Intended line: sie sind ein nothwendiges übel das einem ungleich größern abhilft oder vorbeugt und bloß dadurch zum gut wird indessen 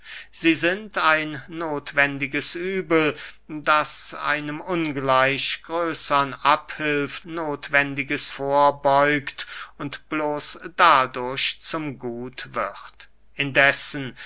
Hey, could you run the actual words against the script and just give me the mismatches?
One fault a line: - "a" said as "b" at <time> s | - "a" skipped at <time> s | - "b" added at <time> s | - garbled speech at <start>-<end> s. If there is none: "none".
- "oder" said as "nothwendiges" at 7.2 s